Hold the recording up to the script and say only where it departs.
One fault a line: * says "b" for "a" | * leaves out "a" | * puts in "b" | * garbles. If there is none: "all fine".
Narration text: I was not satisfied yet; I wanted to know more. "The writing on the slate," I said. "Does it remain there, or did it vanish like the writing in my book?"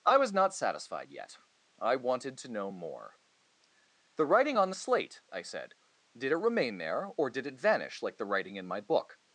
* says "Did" for "Does"